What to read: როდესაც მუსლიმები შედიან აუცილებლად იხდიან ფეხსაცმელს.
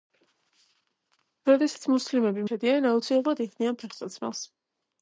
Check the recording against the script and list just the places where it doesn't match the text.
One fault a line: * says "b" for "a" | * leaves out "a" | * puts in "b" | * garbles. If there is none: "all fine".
all fine